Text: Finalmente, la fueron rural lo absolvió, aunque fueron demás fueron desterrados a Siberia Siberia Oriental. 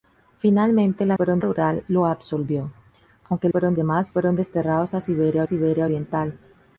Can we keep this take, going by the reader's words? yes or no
yes